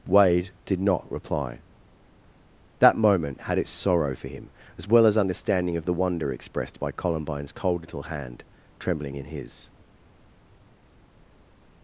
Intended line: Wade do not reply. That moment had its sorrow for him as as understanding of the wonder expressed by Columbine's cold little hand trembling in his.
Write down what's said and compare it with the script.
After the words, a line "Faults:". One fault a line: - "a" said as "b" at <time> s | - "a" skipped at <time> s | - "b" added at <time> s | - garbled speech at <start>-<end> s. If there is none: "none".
Wade did not reply. That moment had its sorrow for him as well as understanding of the wonder expressed by Columbine's cold little hand trembling in his.
Faults:
- "do" said as "did" at 0.7 s
- "well" added at 4.9 s